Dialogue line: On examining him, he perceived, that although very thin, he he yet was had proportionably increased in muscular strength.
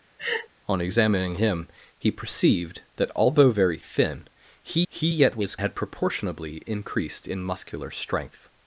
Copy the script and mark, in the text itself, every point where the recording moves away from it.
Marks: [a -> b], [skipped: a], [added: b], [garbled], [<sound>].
[laugh] On examining him, he perceived, that although very thin, he he yet was had proportionably increased in muscular strength.